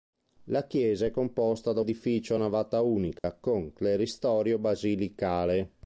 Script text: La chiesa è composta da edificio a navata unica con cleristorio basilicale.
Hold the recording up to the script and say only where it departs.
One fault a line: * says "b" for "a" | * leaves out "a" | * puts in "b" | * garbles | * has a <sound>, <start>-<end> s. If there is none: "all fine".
* has a dropout, 3.2-3.2 s